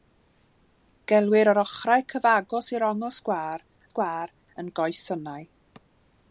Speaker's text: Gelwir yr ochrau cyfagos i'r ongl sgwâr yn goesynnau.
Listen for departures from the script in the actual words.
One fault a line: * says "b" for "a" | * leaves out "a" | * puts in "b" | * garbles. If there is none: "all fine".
* puts in "sgwâr"